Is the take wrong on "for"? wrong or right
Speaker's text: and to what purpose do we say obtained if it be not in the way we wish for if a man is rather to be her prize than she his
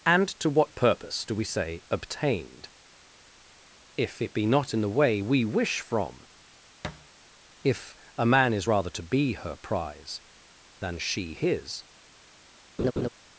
wrong